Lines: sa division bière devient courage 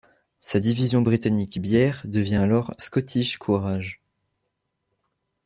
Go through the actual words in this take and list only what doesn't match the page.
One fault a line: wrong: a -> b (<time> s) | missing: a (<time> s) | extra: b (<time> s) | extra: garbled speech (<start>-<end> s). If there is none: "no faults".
extra: britannique (1.0 s)
extra: alors scottish (2.3 s)